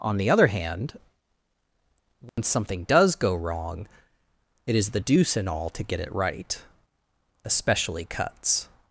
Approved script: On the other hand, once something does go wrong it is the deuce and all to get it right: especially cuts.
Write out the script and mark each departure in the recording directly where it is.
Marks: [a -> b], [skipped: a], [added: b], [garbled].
On the other hand, once something does go wrong it is the deuce and all to get it right: especially cuts.